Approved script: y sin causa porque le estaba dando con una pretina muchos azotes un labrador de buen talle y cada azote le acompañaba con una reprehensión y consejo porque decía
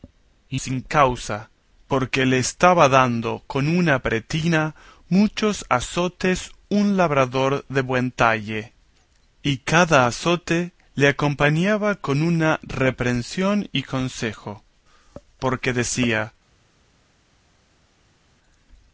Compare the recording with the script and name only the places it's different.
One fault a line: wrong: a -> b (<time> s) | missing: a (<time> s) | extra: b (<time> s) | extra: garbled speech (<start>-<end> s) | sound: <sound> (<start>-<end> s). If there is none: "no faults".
no faults